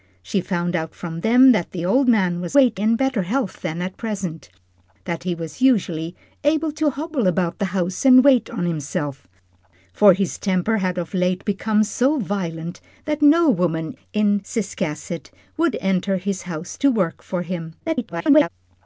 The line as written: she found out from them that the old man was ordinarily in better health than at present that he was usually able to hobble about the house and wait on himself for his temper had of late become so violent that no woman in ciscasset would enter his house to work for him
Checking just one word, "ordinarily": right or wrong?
wrong